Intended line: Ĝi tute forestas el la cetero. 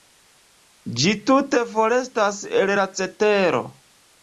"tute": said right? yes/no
yes